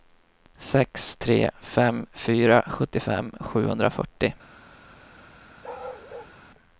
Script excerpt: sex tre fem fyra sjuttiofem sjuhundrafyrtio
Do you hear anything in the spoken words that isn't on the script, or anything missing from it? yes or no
no